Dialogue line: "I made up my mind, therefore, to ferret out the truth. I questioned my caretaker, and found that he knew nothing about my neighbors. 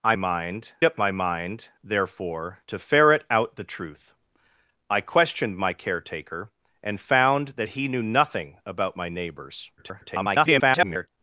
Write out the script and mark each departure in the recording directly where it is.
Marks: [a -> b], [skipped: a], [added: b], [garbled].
"I [made -> mind] up my mind, therefore, to ferret out the truth. I questioned my caretaker, and found that he knew nothing about my neighbors. [garbled]